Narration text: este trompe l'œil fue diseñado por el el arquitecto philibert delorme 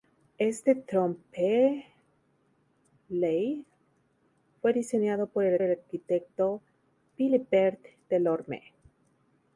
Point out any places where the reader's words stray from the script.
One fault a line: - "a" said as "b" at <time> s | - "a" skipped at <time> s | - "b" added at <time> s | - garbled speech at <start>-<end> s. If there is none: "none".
none